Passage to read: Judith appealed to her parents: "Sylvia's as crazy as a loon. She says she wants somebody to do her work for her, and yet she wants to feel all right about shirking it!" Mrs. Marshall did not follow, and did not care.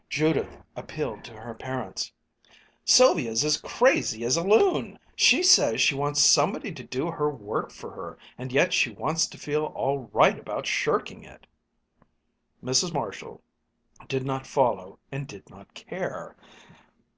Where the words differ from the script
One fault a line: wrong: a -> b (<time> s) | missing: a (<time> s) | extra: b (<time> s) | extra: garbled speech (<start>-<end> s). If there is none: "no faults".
no faults